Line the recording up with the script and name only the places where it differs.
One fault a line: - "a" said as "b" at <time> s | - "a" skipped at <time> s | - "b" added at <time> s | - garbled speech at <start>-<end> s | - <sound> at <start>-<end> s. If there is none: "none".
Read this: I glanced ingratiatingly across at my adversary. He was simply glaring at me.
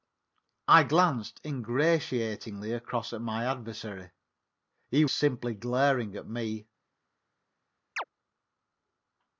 - "was" skipped at 5.0 s
- chirp at 8.0-8.0 s